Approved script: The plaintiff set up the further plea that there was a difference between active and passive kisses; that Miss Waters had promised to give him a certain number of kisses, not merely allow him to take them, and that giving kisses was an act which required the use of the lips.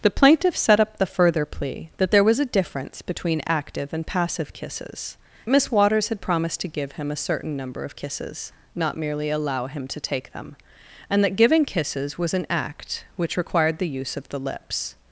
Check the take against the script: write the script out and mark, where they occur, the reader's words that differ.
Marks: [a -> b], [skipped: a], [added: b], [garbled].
The plaintiff set up the further plea that there was a difference between active and passive kisses; [skipped: that] Miss Waters had promised to give him a certain number of kisses, not merely allow him to take them, and that giving kisses was an act which required the use of the lips.